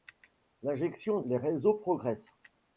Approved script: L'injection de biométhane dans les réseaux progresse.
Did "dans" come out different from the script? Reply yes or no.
yes